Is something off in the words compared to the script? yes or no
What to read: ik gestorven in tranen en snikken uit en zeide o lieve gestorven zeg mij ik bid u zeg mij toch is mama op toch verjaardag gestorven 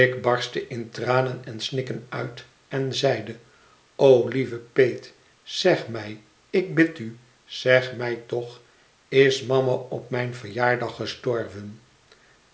yes